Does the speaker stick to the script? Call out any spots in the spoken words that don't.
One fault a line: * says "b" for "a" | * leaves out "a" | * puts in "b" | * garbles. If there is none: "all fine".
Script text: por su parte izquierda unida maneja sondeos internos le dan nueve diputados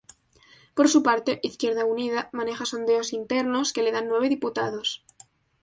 * puts in "que"